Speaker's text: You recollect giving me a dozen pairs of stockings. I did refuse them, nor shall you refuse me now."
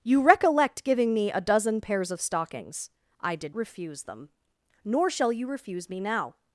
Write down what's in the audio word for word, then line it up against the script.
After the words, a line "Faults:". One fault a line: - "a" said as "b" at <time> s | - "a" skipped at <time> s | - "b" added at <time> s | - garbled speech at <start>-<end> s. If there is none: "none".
You recollect giving me a dozen pairs of stockings. I did refuse them, nor shall you refuse me now."
Faults:
none